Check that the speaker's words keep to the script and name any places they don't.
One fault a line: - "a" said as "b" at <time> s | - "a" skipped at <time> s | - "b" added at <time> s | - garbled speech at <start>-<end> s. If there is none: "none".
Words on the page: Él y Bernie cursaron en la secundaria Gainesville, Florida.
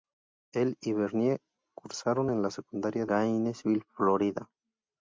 none